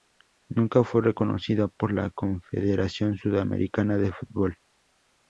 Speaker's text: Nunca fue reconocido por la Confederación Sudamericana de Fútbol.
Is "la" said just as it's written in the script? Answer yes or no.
yes